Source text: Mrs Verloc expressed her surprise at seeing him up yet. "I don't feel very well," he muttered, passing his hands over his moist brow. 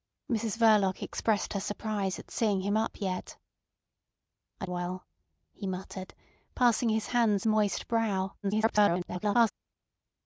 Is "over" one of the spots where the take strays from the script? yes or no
yes